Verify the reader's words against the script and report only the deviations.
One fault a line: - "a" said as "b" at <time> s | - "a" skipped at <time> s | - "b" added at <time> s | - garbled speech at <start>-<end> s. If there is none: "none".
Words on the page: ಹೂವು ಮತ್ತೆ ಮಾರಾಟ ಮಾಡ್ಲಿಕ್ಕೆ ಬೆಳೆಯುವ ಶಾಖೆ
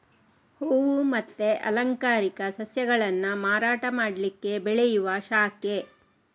- "ಅಲಂಕಾರಿಕ ಸಸ್ಯಗಳನ್ನ" added at 1.7 s